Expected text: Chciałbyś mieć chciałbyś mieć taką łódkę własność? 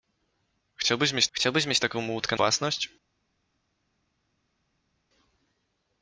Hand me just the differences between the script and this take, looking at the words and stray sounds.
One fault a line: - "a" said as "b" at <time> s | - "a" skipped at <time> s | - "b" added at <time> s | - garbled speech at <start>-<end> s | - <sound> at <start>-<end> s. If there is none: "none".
none